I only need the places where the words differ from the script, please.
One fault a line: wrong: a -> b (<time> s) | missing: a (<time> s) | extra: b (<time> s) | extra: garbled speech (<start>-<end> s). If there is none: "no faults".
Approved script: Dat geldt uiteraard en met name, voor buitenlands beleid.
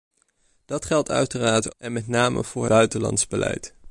no faults